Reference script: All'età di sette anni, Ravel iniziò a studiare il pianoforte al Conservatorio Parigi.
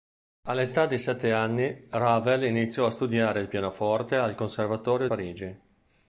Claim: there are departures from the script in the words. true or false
false